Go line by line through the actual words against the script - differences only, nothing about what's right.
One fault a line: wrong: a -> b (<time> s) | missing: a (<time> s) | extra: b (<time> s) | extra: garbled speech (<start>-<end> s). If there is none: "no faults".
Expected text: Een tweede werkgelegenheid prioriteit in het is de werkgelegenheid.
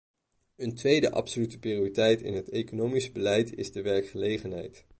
wrong: werkgelegenheid -> absolute (1.1 s)
extra: economisch beleid (2.5 s)